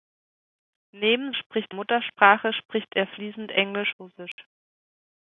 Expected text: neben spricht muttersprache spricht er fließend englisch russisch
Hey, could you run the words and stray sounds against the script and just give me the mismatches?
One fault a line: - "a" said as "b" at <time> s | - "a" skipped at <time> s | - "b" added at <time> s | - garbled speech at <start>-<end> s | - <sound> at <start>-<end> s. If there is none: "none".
- dropout at 4.3-4.4 s